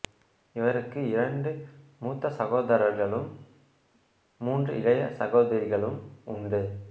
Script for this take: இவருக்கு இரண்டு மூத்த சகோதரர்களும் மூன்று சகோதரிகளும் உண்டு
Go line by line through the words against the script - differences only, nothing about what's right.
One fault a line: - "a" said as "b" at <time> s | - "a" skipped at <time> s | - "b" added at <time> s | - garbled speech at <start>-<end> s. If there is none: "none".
- "இளைய" added at 4.8 s